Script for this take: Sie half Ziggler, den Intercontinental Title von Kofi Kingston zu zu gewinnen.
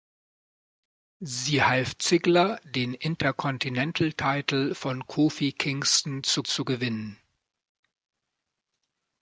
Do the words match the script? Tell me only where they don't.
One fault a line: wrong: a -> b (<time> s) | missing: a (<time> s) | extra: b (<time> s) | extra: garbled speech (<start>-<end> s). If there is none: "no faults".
no faults